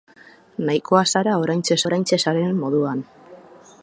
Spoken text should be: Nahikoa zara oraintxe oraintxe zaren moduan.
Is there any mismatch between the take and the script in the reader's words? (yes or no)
no